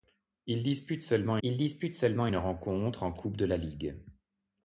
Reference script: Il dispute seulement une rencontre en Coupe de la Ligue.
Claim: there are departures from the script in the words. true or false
true